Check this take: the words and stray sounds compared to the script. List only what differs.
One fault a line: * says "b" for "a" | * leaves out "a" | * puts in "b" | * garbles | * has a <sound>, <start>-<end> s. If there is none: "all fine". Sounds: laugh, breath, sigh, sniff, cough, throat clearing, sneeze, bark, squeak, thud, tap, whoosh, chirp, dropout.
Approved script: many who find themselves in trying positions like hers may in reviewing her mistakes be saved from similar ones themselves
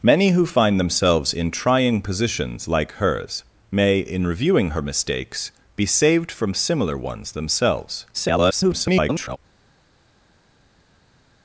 * garbles